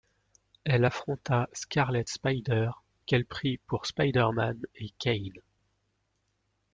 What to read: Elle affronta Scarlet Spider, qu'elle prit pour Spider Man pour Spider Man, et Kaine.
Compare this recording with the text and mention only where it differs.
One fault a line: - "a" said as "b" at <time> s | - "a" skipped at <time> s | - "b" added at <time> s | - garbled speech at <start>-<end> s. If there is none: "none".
- "pour Spider Man" skipped at 4.6 s